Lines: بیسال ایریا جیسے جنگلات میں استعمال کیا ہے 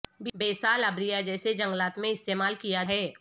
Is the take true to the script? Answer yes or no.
yes